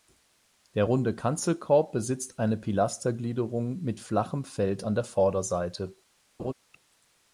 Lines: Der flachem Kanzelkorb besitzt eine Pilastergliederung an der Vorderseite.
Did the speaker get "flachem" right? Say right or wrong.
wrong